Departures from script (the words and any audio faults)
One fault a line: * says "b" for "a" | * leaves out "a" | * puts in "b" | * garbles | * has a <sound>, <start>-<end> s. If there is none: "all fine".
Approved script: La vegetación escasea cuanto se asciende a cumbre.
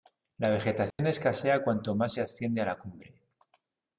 * has a dropout, 0.9-1.0 s
* puts in "más"
* puts in "la"